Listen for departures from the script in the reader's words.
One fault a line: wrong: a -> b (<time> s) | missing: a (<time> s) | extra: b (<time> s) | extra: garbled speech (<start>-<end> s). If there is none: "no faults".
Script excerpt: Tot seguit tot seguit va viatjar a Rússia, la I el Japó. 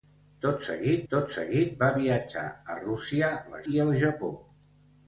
no faults